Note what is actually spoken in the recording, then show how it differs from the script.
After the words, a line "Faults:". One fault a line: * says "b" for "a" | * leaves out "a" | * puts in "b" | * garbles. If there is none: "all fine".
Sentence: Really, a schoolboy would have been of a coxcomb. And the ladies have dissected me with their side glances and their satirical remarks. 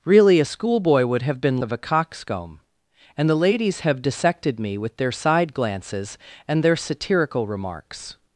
Really, a schoolboy would have been of a coxcomb. And the ladies have dissected me with their side glances and their satirical remarks.
Faults:
all fine